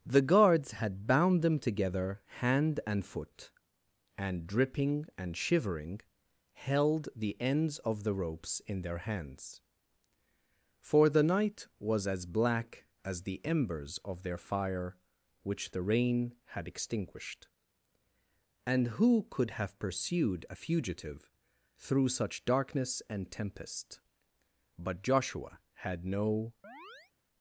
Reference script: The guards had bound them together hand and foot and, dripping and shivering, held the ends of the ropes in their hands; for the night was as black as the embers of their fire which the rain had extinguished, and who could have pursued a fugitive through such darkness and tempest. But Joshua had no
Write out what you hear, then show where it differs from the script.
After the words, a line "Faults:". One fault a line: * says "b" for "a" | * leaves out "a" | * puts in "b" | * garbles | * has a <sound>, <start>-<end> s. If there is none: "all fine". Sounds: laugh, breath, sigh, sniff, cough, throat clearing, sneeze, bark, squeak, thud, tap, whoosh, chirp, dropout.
The guards had bound them together hand and foot and, dripping and shivering, held the ends of the ropes in their hands; for the night was as black as the embers of their fire which the rain had extinguished, and who could have pursued a fugitive through such darkness and tempest. But Joshua had no
Faults:
* has a chirp, 26.6-27.1 s